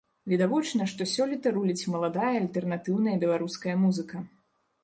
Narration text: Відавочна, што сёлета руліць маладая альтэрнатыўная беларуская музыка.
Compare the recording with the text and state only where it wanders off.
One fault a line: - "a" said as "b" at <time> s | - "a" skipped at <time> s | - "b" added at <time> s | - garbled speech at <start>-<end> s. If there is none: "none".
none